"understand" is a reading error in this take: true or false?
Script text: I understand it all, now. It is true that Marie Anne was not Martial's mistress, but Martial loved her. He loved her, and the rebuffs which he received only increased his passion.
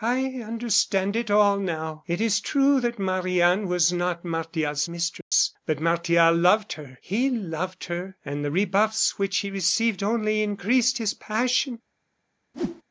false